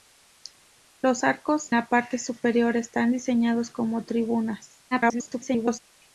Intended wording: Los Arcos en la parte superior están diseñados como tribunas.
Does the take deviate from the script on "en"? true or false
true